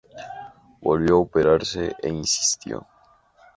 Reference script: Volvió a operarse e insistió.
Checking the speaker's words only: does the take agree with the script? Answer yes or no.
yes